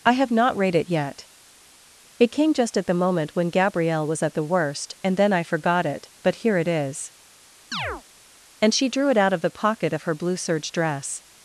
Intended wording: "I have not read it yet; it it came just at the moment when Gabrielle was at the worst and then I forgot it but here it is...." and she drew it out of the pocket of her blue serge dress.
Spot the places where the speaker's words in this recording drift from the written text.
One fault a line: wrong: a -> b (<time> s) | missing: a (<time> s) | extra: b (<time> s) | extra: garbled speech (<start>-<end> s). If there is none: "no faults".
missing: it (2.3 s)